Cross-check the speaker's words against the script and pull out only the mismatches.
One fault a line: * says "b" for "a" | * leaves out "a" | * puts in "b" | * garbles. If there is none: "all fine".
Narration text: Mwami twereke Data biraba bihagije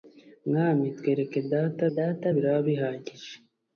* puts in "Data"